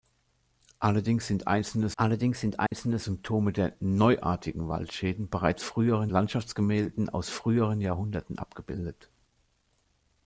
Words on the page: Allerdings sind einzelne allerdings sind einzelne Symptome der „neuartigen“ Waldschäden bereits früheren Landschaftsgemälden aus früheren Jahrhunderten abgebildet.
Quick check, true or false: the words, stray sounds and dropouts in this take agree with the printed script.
false